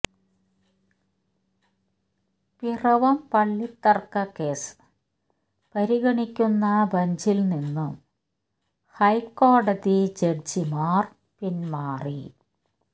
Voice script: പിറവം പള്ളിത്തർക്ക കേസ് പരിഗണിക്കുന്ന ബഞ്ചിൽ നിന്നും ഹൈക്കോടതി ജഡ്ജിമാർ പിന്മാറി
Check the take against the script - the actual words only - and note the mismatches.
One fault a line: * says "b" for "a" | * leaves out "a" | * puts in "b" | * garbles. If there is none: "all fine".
all fine